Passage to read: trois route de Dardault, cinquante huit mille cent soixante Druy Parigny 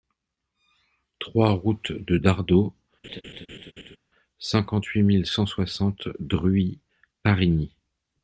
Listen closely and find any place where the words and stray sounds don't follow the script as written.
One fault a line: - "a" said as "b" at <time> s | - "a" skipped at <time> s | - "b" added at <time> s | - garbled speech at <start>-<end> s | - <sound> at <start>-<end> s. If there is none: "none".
- laugh at 3.0-4.0 s